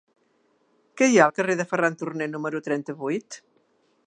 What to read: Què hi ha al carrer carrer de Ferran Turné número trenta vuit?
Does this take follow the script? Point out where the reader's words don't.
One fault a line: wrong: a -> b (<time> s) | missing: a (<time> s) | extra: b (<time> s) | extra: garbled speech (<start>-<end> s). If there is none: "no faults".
missing: carrer (1.6 s)